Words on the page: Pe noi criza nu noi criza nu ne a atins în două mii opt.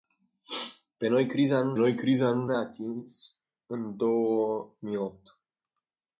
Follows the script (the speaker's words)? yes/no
yes